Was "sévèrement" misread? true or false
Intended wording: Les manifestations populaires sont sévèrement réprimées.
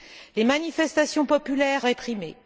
true